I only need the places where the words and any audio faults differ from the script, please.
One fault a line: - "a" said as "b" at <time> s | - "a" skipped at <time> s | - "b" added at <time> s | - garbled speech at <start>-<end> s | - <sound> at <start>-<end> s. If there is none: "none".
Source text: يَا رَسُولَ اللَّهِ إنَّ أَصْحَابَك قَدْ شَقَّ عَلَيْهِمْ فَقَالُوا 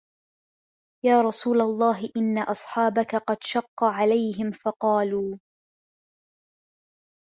none